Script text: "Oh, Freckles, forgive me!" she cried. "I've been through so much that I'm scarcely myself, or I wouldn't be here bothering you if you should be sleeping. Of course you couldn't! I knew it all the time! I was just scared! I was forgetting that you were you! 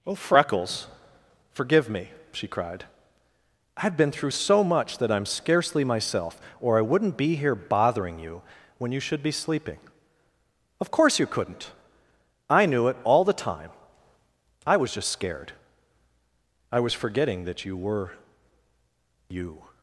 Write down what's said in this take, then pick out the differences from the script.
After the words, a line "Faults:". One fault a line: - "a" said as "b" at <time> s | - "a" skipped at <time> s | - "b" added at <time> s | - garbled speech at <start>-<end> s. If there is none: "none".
"Oh, Freckles, forgive me!" she cried. "I've been through so much that I'm scarcely myself, or I wouldn't be here bothering you when you should be sleeping. Of course you couldn't! I knew it all the time! I was just scared! I was forgetting that you were you!
Faults:
- "if" said as "when" at 8.8 s